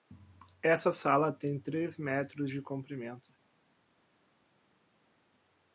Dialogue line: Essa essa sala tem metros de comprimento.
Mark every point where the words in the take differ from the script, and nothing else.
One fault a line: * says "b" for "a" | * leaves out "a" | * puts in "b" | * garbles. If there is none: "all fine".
* leaves out "essa"
* puts in "três"